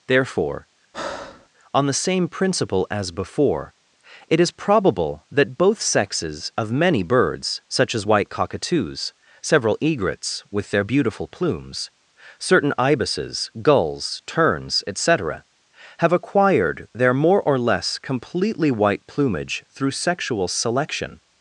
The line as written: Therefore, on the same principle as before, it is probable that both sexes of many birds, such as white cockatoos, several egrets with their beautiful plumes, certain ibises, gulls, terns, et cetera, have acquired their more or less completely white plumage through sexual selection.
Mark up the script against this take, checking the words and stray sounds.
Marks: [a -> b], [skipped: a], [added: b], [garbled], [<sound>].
Therefore, [breath] on the same principle as before, it is probable that both sexes of many birds, such as white cockatoos, several egrets with their beautiful plumes, certain ibises, gulls, terns, et cetera, have acquired their more or less completely white plumage through sexual selection.